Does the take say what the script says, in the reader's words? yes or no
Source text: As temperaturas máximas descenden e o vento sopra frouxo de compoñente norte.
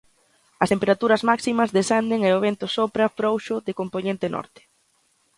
yes